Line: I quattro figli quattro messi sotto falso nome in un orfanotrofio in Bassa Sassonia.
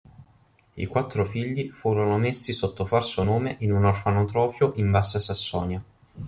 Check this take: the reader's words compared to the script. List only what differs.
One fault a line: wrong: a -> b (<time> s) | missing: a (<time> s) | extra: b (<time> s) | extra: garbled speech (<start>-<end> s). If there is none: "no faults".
wrong: quattro -> furono (1.7 s)